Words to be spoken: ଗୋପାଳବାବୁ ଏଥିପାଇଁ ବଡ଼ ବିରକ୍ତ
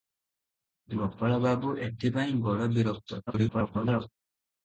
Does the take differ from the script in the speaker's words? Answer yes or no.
yes